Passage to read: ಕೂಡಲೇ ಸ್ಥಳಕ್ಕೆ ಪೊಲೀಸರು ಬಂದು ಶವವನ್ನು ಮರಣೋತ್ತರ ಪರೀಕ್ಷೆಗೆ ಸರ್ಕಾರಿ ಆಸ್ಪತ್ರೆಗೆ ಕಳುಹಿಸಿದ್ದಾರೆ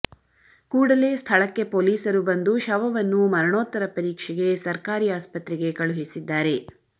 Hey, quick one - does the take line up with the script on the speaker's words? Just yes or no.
yes